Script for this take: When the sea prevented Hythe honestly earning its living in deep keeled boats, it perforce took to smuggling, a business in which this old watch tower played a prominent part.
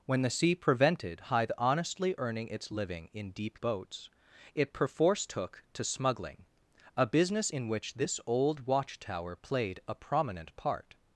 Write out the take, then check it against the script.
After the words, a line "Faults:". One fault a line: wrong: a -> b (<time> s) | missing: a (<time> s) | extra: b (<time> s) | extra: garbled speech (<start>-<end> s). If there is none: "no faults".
When the sea prevented Hythe honestly earning its living in deep boats, it perforce took to smuggling, a business in which this old watch tower played a prominent part.
Faults:
missing: keeled (3.6 s)